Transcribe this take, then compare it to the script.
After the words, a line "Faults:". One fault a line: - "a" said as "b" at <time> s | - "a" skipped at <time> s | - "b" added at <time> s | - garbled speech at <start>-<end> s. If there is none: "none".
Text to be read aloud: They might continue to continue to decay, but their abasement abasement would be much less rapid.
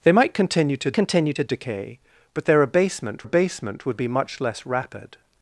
They might continue to continue to decay, but their abasement abasement would be much less rapid.
Faults:
none